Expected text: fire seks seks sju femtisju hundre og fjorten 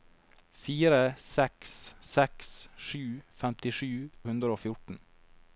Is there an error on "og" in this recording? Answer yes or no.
no